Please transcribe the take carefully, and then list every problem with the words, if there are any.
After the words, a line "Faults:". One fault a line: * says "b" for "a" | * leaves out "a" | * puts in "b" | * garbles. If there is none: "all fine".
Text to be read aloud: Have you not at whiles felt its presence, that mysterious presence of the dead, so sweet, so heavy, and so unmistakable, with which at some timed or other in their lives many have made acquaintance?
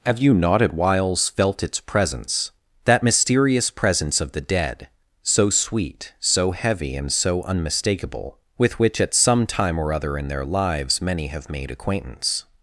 Have you not at whiles felt its presence, that mysterious presence of the dead, so sweet, so heavy, and so unmistakable, with which at some time or other in their lives many have made acquaintance?
Faults:
* says "time" for "timed"